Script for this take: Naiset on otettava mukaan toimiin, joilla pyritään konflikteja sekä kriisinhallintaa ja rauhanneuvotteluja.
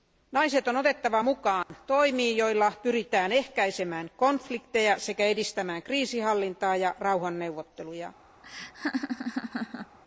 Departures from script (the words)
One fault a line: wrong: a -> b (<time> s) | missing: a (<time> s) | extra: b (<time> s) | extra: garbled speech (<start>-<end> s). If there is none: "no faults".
extra: ehkäisemään (3.3 s)
extra: edistämään (5.3 s)